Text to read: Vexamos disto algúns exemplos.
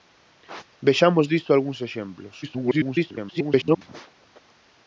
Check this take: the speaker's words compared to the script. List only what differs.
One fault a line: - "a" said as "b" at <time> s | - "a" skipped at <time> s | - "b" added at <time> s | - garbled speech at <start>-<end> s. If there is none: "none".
- garbled speech at 2.4-3.8 s